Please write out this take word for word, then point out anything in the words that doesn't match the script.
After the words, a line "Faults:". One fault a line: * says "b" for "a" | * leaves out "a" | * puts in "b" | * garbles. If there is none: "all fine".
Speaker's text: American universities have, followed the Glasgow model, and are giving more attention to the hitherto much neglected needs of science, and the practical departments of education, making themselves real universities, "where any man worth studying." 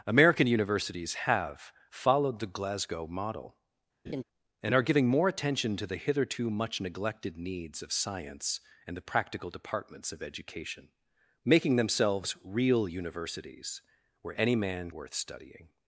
American universities have, followed the Glasgow model, and are giving more attention to the hitherto much neglected needs of science, and the practical departments of education, making themselves real universities, "where any man worth studying."
Faults:
all fine